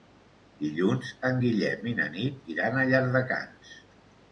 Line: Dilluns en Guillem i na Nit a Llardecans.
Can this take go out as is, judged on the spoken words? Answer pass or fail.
fail